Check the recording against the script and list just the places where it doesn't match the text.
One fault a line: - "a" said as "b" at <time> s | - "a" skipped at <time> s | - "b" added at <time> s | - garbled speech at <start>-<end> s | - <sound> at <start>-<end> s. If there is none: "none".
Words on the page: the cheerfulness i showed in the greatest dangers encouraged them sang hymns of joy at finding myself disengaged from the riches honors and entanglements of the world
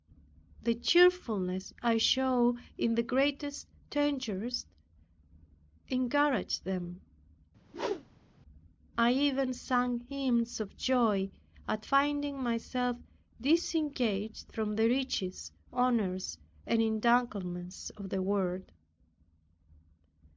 - whoosh at 7.6-8.4 s
- "i even" added at 9.0 s